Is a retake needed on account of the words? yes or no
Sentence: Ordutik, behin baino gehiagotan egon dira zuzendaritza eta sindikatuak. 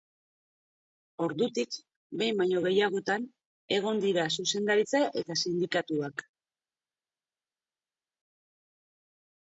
no